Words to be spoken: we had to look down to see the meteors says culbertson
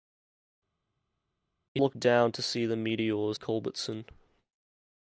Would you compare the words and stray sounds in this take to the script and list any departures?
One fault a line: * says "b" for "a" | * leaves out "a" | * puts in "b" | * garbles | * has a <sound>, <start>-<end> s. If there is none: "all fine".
* leaves out "had to"
* leaves out "says"